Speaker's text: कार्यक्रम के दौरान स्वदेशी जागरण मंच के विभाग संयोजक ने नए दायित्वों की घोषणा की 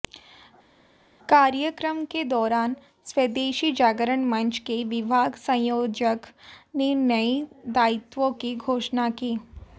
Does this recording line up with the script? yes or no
yes